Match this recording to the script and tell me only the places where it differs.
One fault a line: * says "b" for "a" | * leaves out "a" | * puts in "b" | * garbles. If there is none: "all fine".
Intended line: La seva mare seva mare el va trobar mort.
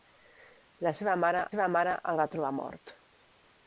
all fine